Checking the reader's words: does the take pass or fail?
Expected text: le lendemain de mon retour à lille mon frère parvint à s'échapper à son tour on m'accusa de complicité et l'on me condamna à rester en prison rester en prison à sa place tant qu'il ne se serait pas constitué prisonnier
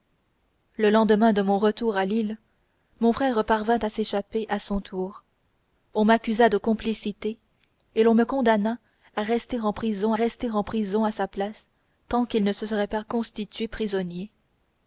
pass